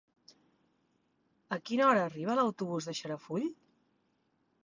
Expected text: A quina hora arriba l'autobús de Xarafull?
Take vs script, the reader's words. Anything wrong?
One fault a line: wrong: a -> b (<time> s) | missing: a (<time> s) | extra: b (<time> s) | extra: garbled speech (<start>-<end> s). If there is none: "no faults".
no faults